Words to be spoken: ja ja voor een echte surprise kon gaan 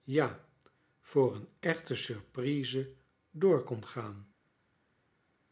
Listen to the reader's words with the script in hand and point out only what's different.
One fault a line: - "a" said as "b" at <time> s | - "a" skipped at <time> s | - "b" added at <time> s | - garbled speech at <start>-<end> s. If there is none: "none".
- "ja" skipped at 0.5 s
- "door" added at 3.3 s